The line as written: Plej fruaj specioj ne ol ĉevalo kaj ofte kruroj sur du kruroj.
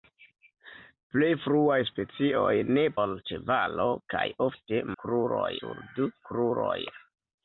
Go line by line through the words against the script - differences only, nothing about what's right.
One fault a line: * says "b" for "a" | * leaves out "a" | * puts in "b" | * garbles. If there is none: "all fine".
all fine